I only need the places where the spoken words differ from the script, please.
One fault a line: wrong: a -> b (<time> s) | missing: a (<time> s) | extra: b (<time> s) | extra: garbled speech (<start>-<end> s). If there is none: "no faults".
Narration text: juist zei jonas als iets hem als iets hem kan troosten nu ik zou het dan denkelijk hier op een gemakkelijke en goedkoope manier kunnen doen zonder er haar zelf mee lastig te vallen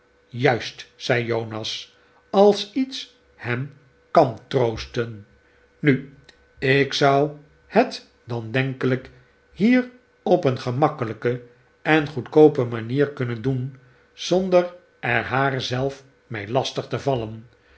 missing: als iets hem (3.7 s)